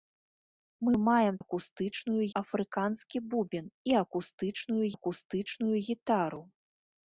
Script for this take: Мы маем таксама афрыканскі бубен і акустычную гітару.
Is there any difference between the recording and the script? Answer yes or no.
yes